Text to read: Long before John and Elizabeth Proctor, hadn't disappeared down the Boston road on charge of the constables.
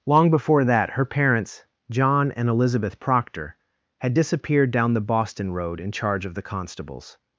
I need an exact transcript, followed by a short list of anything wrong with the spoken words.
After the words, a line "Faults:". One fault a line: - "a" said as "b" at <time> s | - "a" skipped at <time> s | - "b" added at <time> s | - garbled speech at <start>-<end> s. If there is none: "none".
Long before that her parents, John and Elizabeth Proctor, had disappeared down the Boston road in charge of the constables.
Faults:
- "that her parents" added at 0.6 s
- "hadn't" said as "had" at 4.0 s
- "on" said as "in" at 5.8 s